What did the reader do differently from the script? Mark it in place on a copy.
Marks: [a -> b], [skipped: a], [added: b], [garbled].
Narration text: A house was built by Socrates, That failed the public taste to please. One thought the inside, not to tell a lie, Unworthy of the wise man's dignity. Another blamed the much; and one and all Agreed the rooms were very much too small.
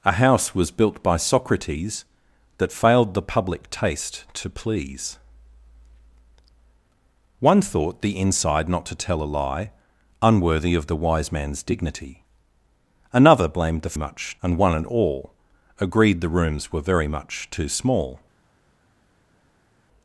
A house was built by Socrates, That failed the public taste to please. One thought the inside, not to tell a lie, Unworthy of the wise man's dignity. Another blamed the much; and one and all Agreed the rooms were very much too small.